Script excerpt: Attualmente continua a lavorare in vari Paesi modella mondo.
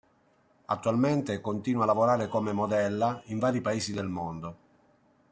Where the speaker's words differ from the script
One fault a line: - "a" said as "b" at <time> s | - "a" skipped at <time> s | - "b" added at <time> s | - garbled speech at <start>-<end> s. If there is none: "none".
- "come modella" added at 2.3 s
- "modella" said as "del" at 3.9 s